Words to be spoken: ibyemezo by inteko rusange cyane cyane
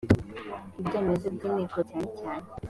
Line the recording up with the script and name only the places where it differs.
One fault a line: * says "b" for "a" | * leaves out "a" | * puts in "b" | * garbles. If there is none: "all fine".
* leaves out "rusange"